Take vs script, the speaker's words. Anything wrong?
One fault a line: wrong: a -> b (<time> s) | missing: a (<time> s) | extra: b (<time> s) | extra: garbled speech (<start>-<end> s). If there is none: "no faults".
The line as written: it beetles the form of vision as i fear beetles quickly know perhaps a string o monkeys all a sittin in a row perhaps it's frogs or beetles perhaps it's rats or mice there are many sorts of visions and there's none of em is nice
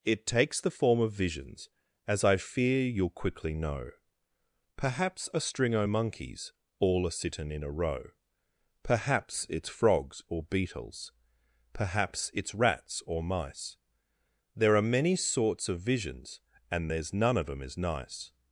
wrong: beetles -> takes (0.2 s)
wrong: vision -> visions (1.1 s)
wrong: beetles -> you'll (2.8 s)